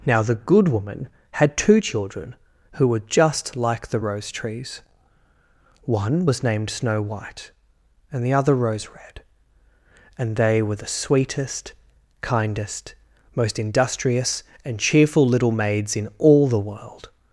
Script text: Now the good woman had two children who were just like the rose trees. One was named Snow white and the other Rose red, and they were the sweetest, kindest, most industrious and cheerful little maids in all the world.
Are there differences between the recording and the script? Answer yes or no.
no